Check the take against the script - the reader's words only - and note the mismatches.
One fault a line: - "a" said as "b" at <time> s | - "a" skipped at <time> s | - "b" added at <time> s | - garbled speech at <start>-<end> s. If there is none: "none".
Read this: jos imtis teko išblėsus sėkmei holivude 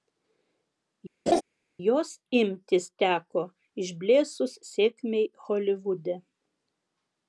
none